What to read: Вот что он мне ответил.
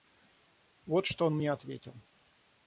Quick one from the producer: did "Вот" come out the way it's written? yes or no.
yes